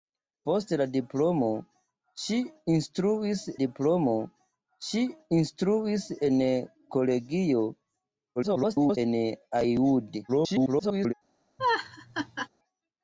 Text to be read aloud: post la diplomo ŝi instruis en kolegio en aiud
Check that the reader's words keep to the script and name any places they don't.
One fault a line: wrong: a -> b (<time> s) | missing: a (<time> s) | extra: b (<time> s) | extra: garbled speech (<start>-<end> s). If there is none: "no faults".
extra: diplomo ŝi instruis (3.6 s)
extra: garbled speech (8.4-9.0 s)
extra: garbled speech (10.3-11.1 s)